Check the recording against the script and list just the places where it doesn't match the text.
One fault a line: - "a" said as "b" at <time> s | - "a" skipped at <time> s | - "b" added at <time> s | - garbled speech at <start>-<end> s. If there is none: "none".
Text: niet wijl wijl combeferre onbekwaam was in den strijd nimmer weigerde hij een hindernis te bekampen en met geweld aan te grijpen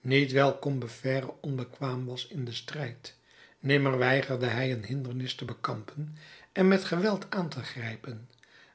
- "wijl" skipped at 0.6 s